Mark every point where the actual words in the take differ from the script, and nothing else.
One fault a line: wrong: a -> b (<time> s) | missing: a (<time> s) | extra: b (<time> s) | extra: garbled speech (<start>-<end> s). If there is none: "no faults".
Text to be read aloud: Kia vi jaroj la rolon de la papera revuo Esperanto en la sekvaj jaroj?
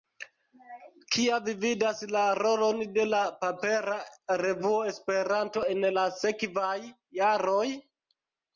wrong: jaroj -> vidas (1.6 s)